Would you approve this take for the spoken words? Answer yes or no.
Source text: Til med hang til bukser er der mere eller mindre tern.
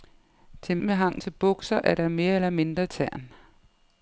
yes